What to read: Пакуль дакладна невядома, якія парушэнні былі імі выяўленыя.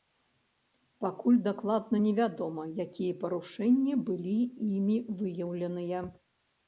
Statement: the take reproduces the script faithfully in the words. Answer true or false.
true